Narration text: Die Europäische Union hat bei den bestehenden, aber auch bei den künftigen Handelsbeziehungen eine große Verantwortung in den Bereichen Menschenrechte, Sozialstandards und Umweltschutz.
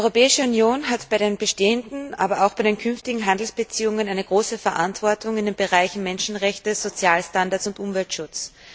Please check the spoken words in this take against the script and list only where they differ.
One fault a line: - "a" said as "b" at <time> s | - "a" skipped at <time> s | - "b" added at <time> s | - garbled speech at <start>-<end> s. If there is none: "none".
none